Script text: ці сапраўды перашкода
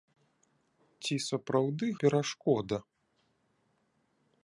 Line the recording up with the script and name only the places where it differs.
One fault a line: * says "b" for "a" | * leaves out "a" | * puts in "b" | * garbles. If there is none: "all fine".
all fine